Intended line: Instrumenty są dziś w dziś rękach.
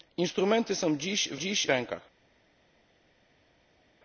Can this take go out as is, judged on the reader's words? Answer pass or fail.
pass